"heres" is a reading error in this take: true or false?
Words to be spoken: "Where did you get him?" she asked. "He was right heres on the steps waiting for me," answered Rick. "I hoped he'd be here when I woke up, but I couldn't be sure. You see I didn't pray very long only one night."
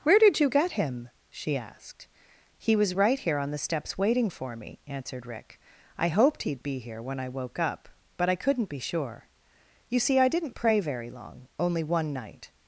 true